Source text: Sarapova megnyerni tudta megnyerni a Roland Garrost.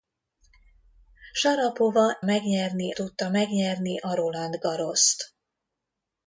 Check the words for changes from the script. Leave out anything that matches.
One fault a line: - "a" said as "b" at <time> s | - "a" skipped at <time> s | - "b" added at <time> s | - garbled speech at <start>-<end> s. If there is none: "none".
none